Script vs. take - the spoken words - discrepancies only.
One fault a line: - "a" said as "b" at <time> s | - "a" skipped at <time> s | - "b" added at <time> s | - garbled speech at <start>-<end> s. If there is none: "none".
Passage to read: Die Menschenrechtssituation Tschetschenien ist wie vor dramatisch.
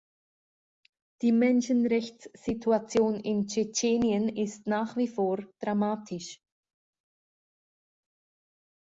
- "in" added at 3.2 s
- "nach" added at 4.7 s